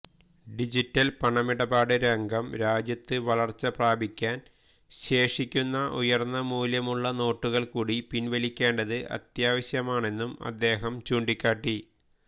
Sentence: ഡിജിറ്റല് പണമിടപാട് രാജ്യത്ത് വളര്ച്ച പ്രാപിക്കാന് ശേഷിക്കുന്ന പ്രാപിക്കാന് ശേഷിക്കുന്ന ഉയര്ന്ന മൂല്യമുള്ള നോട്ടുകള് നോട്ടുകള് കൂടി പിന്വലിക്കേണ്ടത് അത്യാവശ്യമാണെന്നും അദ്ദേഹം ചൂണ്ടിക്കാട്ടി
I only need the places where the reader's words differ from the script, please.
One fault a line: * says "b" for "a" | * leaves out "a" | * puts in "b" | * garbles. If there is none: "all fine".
* puts in "രംഗം"
* leaves out "പ്രാപിക്കാന് ശേഷിക്കുന്ന"
* leaves out "നോട്ടുകള്"